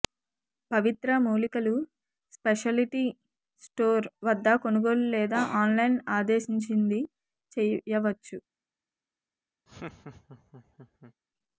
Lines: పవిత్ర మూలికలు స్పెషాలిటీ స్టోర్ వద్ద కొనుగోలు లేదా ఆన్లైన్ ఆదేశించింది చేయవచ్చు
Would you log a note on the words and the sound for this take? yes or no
yes